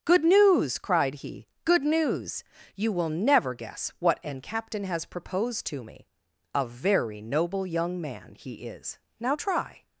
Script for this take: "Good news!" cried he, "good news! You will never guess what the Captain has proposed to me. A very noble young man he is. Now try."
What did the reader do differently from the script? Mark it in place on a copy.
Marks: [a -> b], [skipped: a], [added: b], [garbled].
"Good news!" cried he, "good news! You will never guess what [the -> an] Captain has proposed to me. A very noble young man he is. Now try."